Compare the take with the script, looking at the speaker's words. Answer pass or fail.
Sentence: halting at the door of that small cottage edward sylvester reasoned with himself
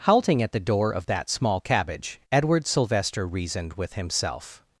fail